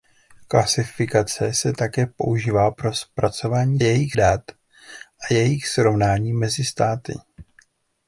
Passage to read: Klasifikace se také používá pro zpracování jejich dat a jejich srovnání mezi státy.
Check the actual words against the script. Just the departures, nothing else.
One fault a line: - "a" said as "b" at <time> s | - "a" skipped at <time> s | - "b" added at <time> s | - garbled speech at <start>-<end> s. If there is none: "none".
none